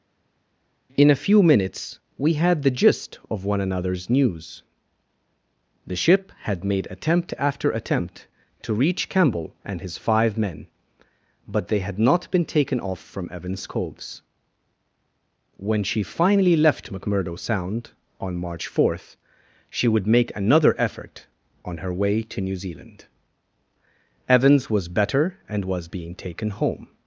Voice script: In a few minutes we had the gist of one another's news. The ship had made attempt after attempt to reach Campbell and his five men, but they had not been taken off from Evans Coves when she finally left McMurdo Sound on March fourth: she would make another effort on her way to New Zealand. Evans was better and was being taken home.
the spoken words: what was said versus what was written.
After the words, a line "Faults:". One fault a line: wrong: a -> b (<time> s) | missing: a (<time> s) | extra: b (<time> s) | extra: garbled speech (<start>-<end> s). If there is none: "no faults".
In a few minutes we had the gist of one another's news. The ship had made attempt after attempt to reach Campbell and his five men, but they had not been taken off from Evans Coves when she finally left McMurdo Sound on March fourth: she would make another effort on her way to New Zealand. Evans was better and was being taken home.
Faults:
no faults